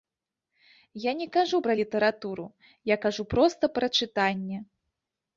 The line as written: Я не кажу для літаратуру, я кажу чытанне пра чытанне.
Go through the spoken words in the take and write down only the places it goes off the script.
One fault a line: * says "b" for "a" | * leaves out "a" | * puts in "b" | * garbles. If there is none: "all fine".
* says "пра" for "для"
* says "проста" for "чытанне"